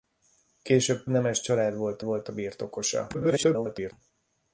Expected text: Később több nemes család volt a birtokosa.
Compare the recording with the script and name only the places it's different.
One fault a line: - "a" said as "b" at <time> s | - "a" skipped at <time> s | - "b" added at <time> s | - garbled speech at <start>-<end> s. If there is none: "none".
- "több" skipped at 1.1 s
- "volt" added at 2.0 s
- garbled speech at 3.1-3.9 s